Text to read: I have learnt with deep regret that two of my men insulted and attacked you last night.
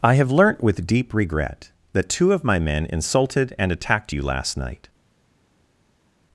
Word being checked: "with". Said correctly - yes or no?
yes